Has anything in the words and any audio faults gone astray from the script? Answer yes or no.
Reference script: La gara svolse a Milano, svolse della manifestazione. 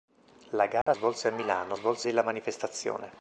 yes